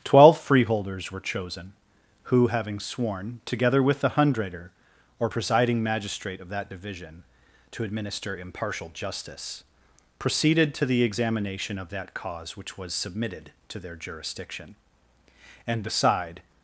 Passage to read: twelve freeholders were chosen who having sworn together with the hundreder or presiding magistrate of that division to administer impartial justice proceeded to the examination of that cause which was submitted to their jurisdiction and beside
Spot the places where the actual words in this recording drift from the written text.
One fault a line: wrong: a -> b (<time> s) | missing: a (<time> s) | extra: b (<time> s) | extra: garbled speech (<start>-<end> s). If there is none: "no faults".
no faults